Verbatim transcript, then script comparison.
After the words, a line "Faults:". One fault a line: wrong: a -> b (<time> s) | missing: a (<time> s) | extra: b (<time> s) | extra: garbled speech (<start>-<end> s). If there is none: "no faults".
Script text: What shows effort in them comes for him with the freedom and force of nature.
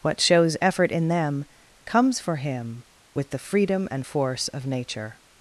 What shows effort in them comes for him with the freedom and force of nature.
Faults:
no faults